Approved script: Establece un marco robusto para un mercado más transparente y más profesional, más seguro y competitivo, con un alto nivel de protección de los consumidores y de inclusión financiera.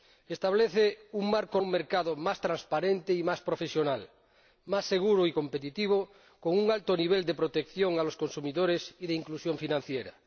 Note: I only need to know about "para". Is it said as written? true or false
false